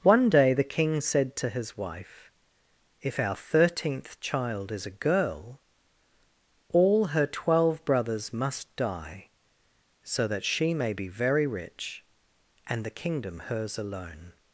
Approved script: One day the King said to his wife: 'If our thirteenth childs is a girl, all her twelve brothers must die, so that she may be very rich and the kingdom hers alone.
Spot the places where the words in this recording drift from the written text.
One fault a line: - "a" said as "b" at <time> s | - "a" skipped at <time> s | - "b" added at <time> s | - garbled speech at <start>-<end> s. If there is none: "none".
- "childs" said as "child" at 4.2 s